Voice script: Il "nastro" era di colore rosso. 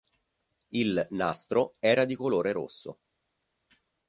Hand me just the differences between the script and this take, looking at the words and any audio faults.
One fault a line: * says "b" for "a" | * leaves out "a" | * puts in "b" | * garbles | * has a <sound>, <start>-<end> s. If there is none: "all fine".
all fine